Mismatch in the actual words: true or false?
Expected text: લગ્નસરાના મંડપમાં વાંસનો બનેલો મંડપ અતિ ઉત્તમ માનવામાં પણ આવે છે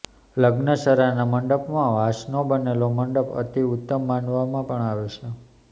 false